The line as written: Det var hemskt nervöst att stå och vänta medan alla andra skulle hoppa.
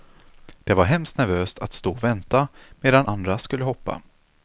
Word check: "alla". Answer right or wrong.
wrong